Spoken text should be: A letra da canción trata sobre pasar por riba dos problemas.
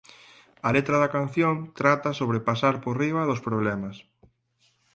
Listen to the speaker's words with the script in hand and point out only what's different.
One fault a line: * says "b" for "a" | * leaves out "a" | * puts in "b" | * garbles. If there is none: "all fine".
all fine